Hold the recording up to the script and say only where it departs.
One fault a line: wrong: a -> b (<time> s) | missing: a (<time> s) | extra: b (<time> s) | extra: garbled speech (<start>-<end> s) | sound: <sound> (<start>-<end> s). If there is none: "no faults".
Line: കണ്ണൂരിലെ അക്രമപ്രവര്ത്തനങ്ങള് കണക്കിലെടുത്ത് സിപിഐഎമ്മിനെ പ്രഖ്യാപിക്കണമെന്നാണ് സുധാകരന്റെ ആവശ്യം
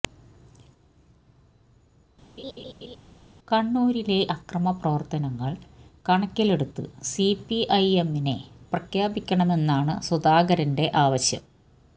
sound: laugh (2.4-3.0 s)